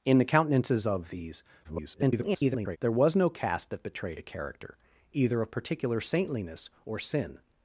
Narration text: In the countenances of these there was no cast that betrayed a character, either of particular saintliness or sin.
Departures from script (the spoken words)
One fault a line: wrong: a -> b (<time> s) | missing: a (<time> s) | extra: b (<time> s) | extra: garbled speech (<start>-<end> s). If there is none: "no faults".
extra: garbled speech (1.6-2.8 s)